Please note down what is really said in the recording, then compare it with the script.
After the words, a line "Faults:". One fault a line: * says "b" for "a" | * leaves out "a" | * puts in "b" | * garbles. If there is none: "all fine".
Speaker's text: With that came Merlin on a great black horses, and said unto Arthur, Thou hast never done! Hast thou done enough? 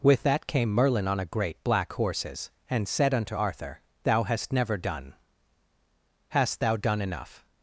With that came Merlin on a great black horses, and said unto Arthur, Thou hast never done! Hast thou done enough?
Faults:
all fine